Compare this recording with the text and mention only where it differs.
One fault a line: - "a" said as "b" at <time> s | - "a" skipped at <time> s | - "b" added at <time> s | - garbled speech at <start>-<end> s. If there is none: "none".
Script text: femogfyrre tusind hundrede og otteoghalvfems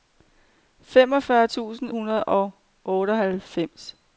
none